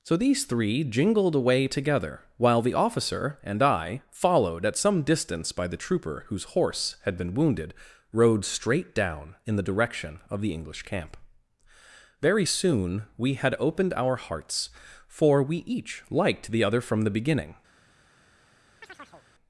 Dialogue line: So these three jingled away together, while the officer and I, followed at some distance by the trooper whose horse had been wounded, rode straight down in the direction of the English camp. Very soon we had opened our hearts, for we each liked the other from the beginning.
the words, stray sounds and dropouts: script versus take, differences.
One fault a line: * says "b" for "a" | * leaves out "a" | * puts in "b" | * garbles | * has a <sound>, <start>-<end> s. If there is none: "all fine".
* has a chirp, 18.8-19.3 s